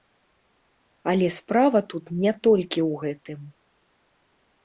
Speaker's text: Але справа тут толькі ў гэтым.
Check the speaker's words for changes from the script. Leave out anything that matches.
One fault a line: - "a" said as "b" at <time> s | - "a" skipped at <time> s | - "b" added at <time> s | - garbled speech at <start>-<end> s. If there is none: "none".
- "не" added at 2.2 s